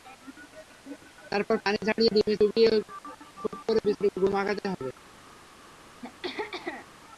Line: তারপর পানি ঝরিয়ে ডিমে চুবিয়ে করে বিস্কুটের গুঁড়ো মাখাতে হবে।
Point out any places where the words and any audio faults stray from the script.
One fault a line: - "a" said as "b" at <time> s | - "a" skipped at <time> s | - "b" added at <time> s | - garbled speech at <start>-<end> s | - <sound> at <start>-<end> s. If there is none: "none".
- "খুব" added at 3.4 s
- throat clearing at 6.0-6.9 s